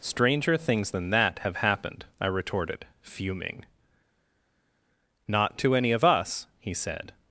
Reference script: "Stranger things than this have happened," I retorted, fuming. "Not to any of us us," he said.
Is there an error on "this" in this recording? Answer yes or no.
yes